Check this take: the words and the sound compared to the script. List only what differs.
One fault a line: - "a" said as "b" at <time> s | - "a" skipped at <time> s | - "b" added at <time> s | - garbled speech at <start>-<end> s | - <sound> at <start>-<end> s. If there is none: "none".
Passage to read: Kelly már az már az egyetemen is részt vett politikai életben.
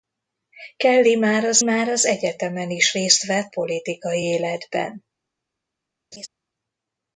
- laugh at 6.1-6.3 s